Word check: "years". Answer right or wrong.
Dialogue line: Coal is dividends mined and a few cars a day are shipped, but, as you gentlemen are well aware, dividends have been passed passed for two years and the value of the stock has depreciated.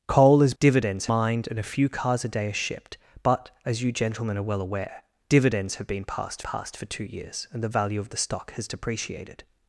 right